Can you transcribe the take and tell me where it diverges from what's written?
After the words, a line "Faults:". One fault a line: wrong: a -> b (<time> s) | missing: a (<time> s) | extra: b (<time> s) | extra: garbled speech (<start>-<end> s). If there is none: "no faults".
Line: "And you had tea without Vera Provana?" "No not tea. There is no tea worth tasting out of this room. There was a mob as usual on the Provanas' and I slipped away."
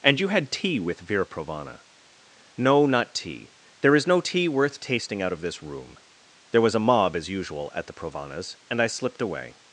"And you had tea with Vera Provana?" "No not tea. There is no tea worth tasting out of this room. There was a mob as usual at the Provanas' and I slipped away."
Faults:
wrong: without -> with (0.8 s)
wrong: on -> at (7.7 s)